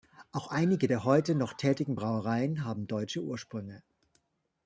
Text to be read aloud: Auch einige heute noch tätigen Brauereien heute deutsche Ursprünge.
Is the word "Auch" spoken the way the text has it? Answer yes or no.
yes